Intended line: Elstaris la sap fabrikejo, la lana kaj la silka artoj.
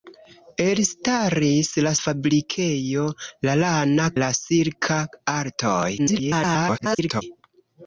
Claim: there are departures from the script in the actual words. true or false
true